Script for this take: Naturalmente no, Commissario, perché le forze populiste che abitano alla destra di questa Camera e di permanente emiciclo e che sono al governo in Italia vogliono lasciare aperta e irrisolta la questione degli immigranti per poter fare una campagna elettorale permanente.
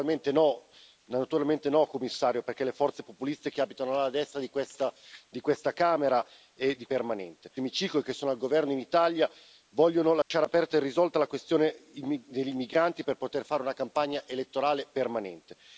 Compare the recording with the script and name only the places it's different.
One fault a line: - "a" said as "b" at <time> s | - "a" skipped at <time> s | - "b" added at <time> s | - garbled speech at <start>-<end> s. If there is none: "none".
none